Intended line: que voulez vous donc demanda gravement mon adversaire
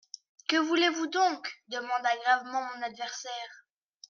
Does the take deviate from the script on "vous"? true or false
false